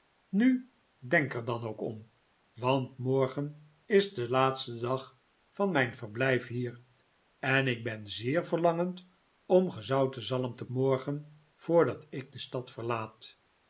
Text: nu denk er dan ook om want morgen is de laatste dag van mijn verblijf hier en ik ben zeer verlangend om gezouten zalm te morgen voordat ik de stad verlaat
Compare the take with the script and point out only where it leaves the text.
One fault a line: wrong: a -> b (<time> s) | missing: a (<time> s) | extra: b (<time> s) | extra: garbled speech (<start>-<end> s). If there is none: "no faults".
no faults